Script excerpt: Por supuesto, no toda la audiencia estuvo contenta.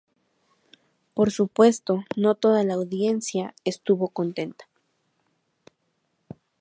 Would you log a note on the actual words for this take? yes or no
no